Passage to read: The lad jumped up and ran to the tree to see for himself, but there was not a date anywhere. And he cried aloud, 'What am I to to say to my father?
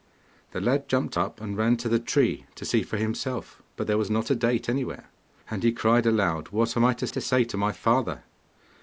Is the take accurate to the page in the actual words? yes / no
yes